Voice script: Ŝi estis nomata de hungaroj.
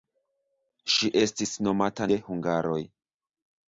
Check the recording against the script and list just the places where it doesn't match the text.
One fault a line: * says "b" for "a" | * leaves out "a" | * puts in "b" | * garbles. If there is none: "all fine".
all fine